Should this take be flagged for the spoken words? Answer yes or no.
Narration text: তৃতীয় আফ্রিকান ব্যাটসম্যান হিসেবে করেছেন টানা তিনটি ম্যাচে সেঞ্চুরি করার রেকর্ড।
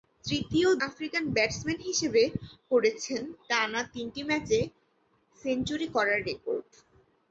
no